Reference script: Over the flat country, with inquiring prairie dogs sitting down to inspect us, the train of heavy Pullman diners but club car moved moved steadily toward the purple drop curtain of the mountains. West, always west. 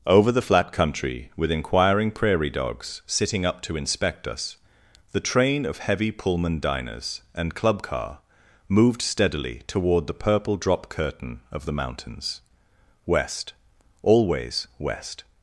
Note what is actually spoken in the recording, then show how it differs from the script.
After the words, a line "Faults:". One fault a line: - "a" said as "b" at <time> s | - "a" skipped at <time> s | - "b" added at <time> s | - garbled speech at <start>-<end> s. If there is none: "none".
Over the flat country, with inquiring prairie dogs sitting up to inspect us, the train of heavy Pullman diners and club car moved steadily toward the purple drop curtain of the mountains. West, always west.
Faults:
- "down" said as "up" at 3.4 s
- "but" said as "and" at 7.3 s
- "moved" skipped at 9.0 s